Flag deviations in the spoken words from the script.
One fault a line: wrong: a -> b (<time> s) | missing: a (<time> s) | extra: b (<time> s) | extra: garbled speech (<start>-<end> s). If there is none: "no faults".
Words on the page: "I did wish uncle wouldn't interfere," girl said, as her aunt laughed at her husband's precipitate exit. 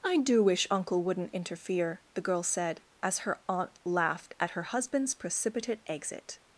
wrong: did -> do (0.2 s)
extra: the (2.1 s)